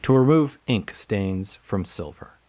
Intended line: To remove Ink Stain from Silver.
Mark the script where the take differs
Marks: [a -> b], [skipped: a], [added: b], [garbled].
To remove Ink [Stain -> Stains] from Silver.